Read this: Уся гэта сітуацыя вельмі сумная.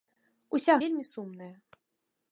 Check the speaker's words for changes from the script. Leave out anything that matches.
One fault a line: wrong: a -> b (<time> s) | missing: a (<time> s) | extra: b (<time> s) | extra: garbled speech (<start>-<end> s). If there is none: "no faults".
missing: гэта сітуацыя (0.8 s)